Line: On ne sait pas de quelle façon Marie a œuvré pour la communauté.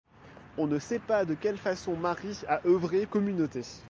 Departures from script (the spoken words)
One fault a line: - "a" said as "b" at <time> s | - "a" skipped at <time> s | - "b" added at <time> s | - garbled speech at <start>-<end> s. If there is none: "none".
- "pour la" skipped at 3.0 s